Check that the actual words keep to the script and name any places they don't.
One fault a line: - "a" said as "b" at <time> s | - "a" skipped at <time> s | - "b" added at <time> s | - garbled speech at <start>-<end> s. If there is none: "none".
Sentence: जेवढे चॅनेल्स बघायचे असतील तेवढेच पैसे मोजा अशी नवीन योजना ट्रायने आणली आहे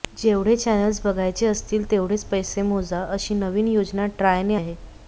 - "आणली" skipped at 4.5 s